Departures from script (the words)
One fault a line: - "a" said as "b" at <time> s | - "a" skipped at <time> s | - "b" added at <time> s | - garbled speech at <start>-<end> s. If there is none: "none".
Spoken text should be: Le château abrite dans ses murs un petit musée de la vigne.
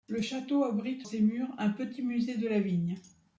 - "dans" skipped at 1.1 s